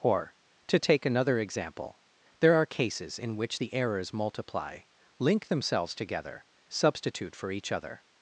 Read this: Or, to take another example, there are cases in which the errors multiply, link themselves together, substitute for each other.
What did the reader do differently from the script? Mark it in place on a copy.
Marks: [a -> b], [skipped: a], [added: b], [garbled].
Or, to take another example, there are cases in which the errors multiply, link themselves together, substitute for each other.